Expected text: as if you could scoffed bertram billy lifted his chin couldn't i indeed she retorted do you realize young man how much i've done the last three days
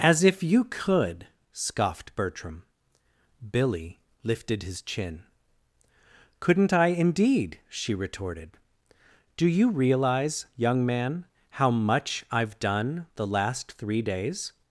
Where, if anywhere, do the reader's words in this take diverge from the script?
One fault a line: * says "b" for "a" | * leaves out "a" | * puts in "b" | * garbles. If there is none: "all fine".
all fine